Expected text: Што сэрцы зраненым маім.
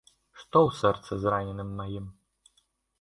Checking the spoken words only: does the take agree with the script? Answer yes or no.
no